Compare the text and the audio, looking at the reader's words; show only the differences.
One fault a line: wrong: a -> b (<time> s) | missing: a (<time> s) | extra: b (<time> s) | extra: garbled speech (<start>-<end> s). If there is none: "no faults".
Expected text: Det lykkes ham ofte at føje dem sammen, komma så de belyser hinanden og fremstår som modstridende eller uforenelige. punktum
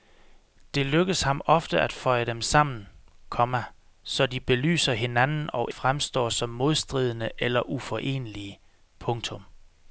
no faults